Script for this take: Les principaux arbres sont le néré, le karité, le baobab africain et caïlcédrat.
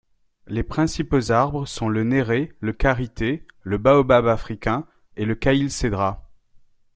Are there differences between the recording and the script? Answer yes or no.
yes